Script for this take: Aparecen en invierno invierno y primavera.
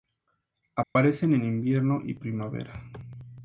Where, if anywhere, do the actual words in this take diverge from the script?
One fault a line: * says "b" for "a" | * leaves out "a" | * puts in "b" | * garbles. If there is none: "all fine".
* leaves out "invierno"